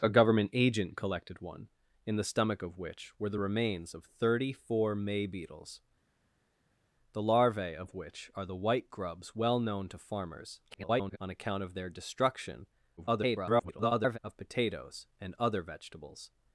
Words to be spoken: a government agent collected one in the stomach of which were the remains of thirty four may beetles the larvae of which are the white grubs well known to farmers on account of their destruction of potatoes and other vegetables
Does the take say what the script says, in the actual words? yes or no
no